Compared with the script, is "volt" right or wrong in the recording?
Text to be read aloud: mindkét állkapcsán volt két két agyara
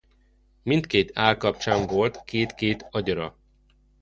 right